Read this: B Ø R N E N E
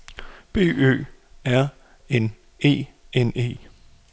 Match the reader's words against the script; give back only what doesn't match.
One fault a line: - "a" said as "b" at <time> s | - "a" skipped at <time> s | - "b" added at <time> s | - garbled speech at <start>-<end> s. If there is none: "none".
none